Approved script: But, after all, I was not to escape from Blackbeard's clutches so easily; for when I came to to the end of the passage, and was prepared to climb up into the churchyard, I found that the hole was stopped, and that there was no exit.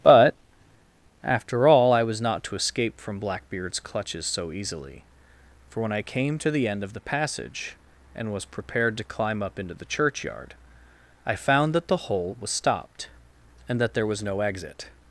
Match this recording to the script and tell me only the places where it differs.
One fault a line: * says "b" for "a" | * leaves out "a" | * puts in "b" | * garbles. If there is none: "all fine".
* leaves out "to"